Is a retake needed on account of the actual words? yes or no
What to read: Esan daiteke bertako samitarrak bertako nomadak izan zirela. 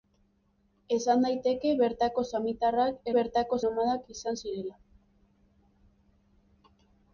no